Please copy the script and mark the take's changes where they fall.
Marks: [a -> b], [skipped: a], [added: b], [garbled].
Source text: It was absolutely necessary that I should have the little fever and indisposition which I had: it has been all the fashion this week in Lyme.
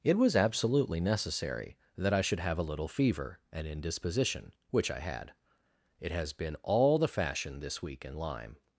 It was absolutely necessary that I should have [the -> a] little fever and indisposition which I had: it has been all the fashion this week in Lyme.